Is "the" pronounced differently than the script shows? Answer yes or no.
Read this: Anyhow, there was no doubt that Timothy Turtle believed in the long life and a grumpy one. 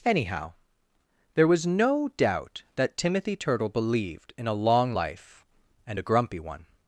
yes